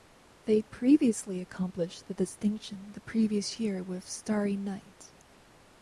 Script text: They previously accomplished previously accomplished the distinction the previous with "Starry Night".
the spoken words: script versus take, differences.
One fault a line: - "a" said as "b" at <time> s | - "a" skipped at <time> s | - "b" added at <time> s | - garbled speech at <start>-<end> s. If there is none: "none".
- "previously accomplished" skipped at 2.1 s
- "year" added at 3.6 s